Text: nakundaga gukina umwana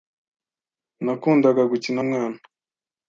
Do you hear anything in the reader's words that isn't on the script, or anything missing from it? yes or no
no